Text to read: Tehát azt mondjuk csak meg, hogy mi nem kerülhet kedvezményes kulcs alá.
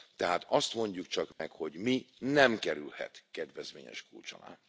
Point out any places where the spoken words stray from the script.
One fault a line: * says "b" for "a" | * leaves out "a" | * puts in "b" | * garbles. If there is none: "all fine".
all fine